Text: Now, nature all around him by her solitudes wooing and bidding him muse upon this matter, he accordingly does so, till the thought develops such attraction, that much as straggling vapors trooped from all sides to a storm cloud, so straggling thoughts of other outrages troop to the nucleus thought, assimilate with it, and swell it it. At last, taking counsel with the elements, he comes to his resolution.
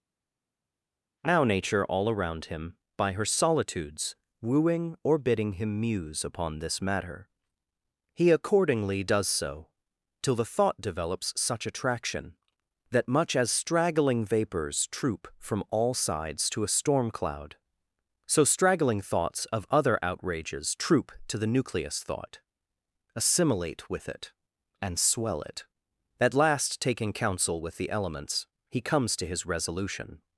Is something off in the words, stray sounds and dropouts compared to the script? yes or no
yes